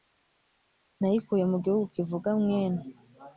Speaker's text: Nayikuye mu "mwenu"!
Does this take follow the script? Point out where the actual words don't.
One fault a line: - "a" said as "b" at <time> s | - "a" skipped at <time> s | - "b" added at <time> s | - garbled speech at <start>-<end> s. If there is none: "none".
- "gihugu kivuga" added at 1.6 s